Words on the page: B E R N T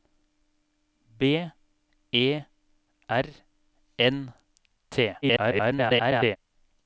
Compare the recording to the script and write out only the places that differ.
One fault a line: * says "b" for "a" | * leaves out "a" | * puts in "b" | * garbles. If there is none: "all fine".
* garbles